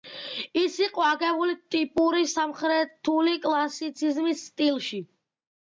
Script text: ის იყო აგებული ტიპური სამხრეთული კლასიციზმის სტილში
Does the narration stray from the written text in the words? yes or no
no